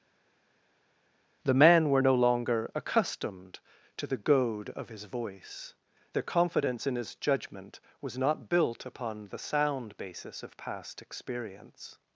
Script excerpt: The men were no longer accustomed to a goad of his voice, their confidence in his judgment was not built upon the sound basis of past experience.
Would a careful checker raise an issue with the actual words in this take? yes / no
yes